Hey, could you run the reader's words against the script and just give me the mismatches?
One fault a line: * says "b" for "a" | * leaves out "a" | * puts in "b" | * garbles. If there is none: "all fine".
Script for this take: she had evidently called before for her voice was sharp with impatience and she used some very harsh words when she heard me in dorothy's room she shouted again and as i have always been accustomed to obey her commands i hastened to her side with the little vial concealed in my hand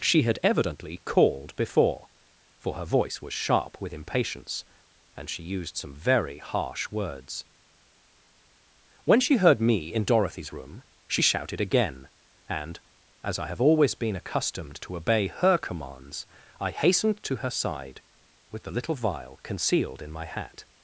* says "hat" for "hand"